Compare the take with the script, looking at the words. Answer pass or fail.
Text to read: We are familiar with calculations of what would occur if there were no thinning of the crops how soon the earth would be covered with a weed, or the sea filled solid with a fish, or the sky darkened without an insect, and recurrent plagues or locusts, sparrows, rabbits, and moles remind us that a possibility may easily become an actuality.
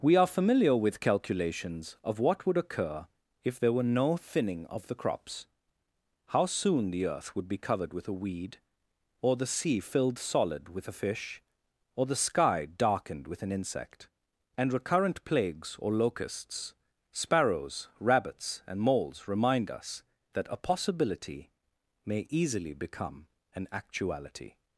fail